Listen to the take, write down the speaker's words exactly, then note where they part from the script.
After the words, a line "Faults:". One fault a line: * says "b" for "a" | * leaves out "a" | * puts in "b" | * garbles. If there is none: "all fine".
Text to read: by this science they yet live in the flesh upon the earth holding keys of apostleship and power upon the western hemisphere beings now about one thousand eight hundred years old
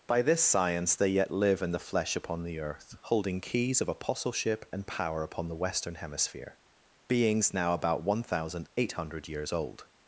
by this science they yet live in the flesh upon the earth holding keys of apostleship and power upon the western hemisphere beings now about one thousand eight hundred years old
Faults:
all fine